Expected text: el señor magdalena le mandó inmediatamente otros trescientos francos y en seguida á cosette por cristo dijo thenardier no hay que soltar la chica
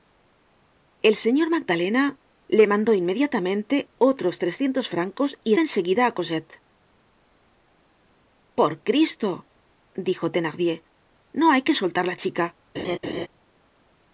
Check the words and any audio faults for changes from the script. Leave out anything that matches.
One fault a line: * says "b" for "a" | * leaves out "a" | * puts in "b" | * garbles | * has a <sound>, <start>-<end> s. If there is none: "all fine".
* has a laugh, 12.7-13.3 s